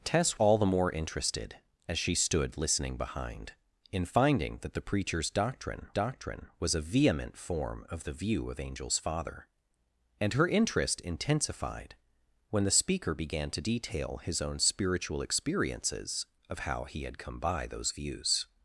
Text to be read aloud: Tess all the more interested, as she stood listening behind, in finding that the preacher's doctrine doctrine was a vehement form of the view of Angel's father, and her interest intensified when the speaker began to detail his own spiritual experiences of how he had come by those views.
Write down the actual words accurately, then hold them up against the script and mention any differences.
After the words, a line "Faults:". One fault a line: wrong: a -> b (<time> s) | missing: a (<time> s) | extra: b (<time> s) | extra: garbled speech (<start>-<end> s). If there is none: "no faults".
Tess all the more interested, as she stood listening behind, in finding that the preacher's doctrine doctrine was a vehement form of the view of Angel's father, and her interest intensified when the speaker began to detail his own spiritual experiences of how he had come by those views.
Faults:
no faults